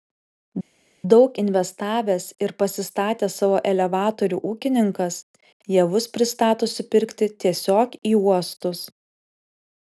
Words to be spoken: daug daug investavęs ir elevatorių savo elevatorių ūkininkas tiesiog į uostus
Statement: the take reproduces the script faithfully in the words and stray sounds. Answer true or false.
false